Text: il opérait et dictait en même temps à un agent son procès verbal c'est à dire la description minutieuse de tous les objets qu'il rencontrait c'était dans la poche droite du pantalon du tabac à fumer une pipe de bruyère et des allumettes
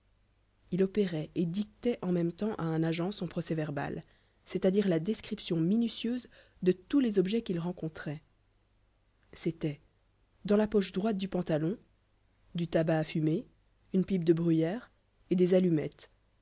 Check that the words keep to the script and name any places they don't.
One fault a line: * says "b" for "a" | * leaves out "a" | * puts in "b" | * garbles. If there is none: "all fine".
all fine